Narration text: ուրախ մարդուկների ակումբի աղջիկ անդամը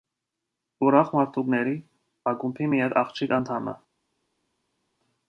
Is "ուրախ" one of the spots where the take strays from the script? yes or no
no